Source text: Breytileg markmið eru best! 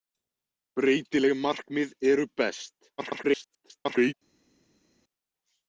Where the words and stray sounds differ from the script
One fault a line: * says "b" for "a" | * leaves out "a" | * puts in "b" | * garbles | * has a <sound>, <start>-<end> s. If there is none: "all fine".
* garbles